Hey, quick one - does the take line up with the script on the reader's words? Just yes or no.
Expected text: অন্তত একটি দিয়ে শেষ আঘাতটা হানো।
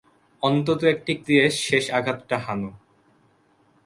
yes